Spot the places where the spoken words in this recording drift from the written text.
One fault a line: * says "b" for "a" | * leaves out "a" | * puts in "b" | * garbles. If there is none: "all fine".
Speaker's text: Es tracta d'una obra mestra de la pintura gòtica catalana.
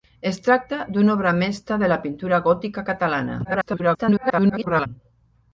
* garbles